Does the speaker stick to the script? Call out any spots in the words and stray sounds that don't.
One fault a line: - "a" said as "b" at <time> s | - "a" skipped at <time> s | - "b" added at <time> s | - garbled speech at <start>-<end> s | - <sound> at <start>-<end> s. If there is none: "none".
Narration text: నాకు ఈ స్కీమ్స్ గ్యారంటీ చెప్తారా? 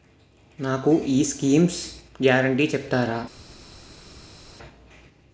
none